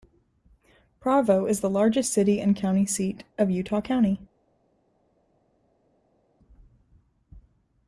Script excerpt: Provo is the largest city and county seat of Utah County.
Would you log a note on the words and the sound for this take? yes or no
no